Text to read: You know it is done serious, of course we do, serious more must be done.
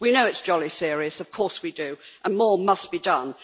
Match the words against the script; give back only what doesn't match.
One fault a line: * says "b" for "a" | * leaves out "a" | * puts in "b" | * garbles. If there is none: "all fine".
* says "We" for "You"
* says "jolly" for "done"
* says "and" for "serious"